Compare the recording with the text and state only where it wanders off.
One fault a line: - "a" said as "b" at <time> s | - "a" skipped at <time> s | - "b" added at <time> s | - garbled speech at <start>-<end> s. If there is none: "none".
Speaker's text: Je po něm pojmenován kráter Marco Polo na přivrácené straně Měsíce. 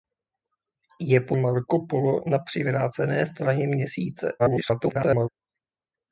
- "něm pojmenován kráter" skipped at 1.4 s
- garbled speech at 4.4-5.3 s